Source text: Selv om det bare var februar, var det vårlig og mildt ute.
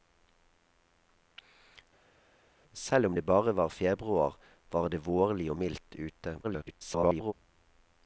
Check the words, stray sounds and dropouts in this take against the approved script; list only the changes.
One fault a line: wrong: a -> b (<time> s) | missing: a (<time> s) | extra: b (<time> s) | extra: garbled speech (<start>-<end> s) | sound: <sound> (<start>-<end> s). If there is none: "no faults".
extra: garbled speech (6.4-7.3 s)